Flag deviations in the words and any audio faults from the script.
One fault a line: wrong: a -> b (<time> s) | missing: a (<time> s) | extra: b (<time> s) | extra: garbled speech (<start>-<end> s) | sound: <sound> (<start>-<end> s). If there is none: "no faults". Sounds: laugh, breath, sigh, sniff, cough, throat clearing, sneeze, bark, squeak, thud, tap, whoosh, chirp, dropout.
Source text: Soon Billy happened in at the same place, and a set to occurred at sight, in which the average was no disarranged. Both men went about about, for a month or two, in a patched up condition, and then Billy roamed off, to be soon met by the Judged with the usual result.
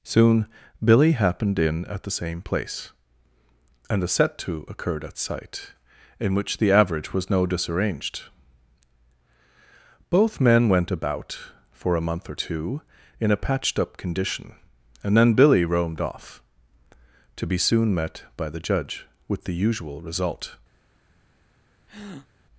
missing: about (11.4 s)
wrong: Judged -> Judge (18.6 s)
sound: breath (21.9-22.3 s)